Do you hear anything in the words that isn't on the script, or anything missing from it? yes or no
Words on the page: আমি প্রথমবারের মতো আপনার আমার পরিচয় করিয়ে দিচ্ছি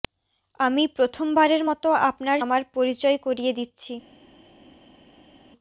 no